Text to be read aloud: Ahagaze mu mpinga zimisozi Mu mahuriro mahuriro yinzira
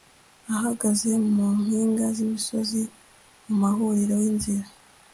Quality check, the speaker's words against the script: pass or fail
fail